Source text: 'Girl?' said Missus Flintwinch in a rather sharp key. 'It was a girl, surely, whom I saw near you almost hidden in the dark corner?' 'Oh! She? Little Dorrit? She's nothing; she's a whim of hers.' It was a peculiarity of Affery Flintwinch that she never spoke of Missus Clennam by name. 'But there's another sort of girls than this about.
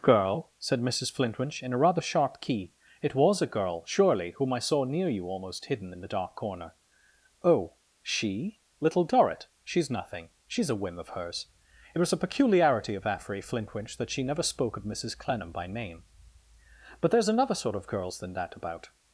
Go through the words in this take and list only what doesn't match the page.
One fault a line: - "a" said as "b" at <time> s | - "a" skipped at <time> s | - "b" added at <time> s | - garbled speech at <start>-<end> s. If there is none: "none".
- "this" said as "that" at 18.3 s